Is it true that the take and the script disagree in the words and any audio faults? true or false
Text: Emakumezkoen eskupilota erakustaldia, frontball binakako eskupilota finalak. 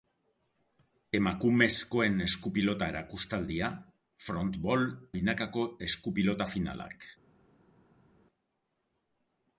false